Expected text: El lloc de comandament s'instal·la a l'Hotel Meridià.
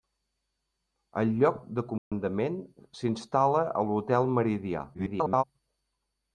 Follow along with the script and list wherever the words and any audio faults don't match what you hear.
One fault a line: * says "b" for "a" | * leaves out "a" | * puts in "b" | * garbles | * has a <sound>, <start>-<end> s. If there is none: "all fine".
* has a dropout, 2.0-2.1 s
* garbles